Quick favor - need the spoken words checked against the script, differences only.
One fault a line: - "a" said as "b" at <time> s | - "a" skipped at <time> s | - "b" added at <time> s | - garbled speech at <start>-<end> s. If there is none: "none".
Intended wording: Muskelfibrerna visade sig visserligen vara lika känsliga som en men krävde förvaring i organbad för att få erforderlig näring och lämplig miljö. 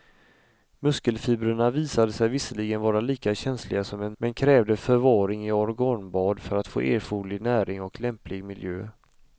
none